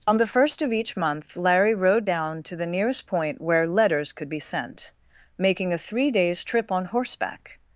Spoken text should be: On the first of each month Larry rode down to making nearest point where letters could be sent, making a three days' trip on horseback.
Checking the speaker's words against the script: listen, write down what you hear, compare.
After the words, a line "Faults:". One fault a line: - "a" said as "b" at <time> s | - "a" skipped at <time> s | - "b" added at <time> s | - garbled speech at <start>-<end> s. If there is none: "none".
On the first of each month Larry rode down to the nearest point where letters could be sent, making a three days' trip on horseback.
Faults:
- "making" said as "the" at 2.5 s